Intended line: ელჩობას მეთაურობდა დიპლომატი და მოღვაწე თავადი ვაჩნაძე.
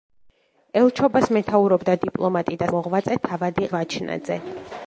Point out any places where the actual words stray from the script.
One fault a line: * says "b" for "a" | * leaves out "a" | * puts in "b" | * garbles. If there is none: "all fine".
all fine